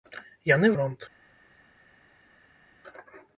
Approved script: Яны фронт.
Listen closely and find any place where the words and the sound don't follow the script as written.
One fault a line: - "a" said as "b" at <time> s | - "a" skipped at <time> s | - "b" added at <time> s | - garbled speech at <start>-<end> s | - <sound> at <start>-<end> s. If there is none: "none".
none